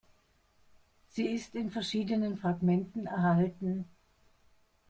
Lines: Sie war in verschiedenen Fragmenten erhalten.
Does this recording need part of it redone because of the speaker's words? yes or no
yes